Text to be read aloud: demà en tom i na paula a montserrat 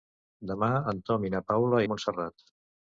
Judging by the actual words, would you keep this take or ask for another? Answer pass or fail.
pass